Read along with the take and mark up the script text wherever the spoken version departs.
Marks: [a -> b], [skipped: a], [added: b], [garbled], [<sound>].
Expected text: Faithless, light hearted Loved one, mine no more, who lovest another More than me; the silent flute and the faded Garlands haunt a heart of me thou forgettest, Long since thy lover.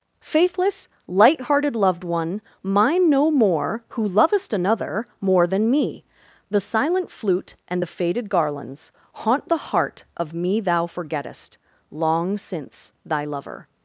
Faithless, light hearted Loved one, mine no more, who lovest another More than me; the silent flute and the faded Garlands haunt [a -> the] heart of me thou forgettest, Long since thy lover.